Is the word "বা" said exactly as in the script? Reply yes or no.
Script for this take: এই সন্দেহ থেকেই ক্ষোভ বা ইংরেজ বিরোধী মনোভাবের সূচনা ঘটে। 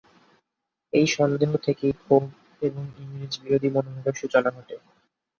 no